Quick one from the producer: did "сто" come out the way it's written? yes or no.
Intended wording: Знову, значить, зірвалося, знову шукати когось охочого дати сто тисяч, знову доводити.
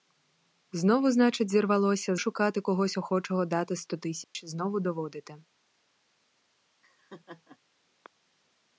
yes